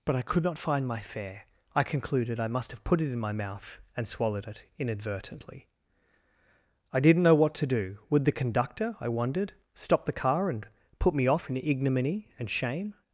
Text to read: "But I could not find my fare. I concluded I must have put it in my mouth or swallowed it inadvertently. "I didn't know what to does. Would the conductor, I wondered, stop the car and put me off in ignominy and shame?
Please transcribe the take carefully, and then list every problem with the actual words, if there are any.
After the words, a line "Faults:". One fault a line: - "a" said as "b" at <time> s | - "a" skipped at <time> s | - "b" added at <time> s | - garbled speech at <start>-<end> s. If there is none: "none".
"But I could not find my fare. I concluded I must have put it in my mouth and swallowed it inadvertently. "I didn't know what to do. Would the conductor, I wondered, stop the car and put me off in ignominy and shame?
Faults:
- "or" said as "and" at 4.0 s
- "does" said as "do" at 7.7 s